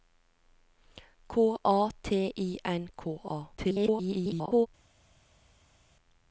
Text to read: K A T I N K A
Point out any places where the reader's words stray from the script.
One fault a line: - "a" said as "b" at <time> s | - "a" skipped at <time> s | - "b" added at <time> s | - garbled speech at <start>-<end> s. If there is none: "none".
- garbled speech at 3.6-4.7 s